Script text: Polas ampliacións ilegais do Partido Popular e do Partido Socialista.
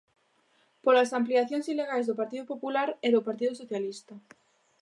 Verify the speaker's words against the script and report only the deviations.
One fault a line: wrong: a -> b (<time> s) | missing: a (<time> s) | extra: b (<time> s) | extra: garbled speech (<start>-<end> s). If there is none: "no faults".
no faults